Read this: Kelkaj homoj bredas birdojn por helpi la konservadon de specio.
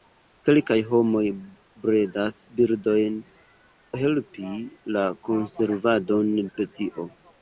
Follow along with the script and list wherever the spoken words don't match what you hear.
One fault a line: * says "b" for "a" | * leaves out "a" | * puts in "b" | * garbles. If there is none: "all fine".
* leaves out "por"
* leaves out "de"